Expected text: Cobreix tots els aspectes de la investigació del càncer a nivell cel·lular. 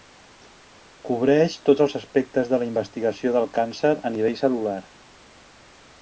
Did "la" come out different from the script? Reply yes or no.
no